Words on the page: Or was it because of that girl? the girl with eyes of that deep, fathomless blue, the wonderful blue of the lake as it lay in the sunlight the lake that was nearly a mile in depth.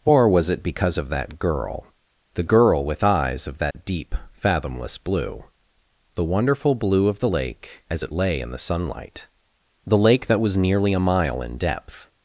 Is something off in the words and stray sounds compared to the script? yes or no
yes